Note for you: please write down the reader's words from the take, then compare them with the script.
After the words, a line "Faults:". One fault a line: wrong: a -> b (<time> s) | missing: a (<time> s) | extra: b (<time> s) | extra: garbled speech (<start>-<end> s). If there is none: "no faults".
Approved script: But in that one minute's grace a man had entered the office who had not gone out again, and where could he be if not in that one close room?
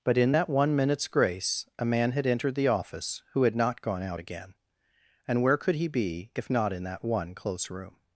But in that one minute's grace a man had entered the office who had not gone out again, and where could he be if not in that one close room?
Faults:
no faults